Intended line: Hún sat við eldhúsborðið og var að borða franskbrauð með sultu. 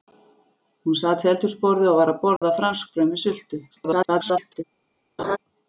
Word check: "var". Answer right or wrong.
right